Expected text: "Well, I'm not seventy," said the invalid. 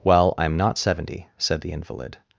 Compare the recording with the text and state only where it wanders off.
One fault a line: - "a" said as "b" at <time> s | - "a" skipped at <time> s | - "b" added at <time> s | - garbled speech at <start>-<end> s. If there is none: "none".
none